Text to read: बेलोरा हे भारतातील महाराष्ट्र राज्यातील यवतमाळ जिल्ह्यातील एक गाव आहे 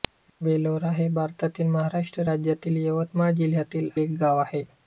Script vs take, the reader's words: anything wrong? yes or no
no